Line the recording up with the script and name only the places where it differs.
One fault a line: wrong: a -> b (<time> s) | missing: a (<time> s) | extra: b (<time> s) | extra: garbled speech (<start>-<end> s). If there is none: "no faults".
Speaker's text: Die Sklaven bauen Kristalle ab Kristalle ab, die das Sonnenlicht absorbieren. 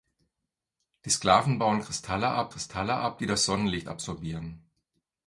no faults